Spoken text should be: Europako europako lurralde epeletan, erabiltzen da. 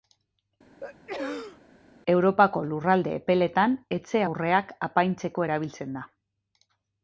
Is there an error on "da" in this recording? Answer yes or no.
no